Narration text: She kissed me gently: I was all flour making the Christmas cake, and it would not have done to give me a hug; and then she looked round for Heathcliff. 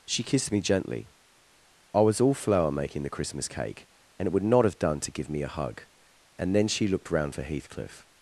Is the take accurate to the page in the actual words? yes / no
yes